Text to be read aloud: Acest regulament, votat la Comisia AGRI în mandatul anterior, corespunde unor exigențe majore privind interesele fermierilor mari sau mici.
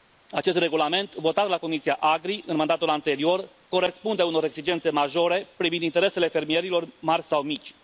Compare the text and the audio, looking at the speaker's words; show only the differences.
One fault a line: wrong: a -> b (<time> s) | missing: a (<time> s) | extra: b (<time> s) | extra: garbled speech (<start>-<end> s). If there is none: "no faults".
no faults